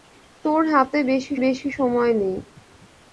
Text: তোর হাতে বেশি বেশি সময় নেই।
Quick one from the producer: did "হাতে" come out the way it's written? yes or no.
yes